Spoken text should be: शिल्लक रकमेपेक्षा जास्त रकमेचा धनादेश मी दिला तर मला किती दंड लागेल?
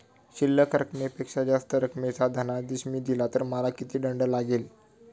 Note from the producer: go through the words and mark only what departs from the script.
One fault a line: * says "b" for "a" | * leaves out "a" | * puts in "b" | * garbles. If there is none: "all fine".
all fine